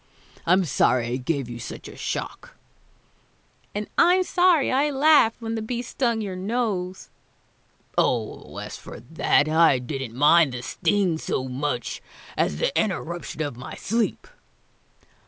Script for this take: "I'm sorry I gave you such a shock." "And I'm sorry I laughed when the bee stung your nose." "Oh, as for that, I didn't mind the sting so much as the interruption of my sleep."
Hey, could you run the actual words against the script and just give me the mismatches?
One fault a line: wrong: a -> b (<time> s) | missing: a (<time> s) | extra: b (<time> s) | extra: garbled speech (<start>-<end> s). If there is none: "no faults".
no faults